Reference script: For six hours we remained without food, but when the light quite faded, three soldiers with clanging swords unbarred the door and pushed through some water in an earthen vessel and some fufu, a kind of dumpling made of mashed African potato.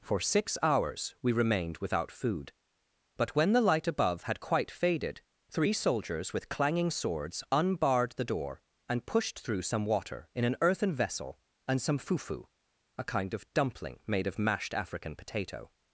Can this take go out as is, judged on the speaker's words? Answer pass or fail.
fail